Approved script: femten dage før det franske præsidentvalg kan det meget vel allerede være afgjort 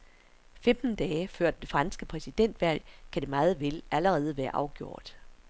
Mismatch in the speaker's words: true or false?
false